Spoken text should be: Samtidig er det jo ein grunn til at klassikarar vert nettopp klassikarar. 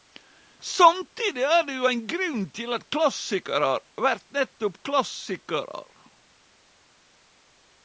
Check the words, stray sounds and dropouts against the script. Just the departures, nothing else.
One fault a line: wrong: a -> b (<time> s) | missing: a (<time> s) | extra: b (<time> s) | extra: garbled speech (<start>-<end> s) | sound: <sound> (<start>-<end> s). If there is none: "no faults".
no faults